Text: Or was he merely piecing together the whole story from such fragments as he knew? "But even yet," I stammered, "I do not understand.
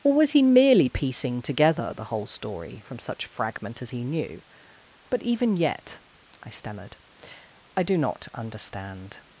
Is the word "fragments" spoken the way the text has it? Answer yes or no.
no